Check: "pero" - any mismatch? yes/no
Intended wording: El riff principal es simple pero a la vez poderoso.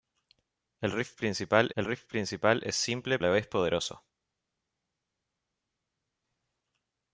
yes